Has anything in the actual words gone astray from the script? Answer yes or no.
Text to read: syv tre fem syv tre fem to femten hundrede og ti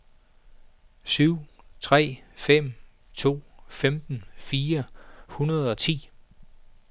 yes